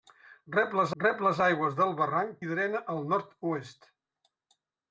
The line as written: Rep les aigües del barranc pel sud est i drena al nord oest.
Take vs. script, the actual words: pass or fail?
fail